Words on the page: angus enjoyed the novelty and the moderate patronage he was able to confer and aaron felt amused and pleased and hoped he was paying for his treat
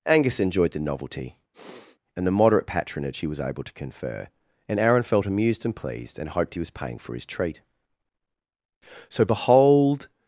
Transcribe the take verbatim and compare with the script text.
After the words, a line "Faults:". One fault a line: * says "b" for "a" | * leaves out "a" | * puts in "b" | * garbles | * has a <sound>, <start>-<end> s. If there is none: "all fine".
angus enjoyed the novelty and the moderate patronage he was able to confer and aaron felt amused and pleased and hoped he was paying for his treat so behold
Faults:
* has a sniff, 1.5-2.0 s
* puts in "so behold"